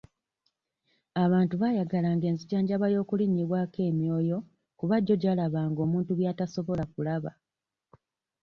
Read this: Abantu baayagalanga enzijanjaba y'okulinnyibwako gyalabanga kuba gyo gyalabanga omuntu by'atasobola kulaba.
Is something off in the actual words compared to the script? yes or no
yes